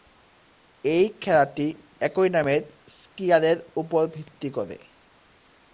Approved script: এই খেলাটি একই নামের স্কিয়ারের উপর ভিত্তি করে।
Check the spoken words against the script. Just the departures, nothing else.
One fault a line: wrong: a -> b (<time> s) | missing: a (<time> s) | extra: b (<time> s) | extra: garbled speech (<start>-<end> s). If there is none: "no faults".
no faults